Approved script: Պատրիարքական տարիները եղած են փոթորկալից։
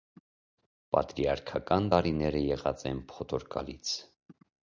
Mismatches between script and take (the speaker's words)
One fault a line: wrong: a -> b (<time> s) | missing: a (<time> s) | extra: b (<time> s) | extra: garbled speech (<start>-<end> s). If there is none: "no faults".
no faults